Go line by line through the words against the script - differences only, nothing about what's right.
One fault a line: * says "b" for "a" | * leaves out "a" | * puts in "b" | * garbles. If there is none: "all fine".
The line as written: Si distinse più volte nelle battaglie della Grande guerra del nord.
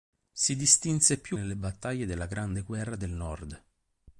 * leaves out "volte"